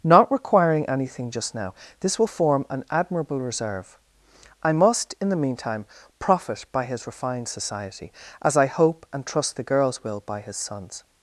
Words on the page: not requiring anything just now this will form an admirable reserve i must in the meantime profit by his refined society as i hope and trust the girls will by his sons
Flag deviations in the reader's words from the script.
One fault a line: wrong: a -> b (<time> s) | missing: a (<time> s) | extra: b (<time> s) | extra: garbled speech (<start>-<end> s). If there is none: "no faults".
no faults